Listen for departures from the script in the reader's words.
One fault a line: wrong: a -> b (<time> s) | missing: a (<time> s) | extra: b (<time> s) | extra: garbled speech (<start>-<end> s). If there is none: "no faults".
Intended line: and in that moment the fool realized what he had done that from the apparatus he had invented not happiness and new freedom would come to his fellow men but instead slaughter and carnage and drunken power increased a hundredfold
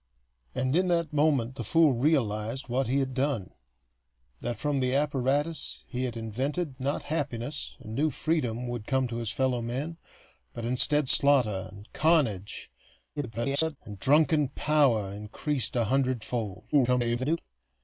extra: garbled speech (13.2-13.8 s)
extra: garbled speech (16.7-17.4 s)